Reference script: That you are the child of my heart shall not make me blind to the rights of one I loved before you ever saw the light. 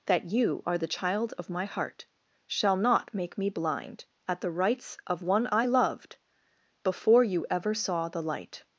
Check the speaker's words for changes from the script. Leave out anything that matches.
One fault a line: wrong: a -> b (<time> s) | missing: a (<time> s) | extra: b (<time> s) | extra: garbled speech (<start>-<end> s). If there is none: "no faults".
wrong: to -> at (4.3 s)